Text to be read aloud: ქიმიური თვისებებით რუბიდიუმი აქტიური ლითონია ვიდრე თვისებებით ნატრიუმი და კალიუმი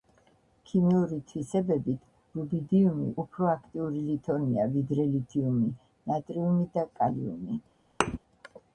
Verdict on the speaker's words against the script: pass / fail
fail